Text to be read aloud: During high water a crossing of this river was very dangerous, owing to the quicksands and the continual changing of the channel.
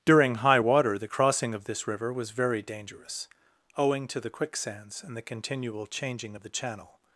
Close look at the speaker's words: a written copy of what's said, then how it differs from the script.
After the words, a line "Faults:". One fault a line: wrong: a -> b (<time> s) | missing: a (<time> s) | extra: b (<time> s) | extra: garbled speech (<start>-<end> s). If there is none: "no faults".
During high water the crossing of this river was very dangerous, owing to the quicksands and the continual changing of the channel.
Faults:
wrong: a -> the (1.0 s)